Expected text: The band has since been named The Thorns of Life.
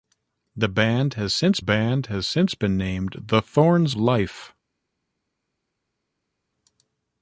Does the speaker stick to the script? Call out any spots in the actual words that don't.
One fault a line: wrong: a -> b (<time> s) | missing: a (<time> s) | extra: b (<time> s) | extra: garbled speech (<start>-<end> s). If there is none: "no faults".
extra: band has since (1.6 s)
missing: of (4.0 s)